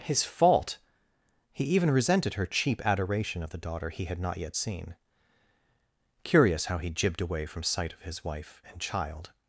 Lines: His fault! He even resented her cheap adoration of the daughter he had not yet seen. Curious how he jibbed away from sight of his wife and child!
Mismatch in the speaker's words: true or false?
false